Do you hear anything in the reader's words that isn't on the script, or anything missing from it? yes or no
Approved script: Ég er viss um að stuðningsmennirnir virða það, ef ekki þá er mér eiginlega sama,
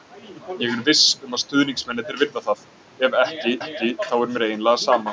yes